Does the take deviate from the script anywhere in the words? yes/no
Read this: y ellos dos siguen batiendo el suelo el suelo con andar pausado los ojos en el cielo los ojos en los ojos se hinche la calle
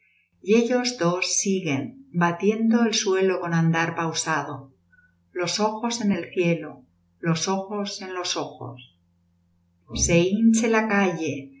yes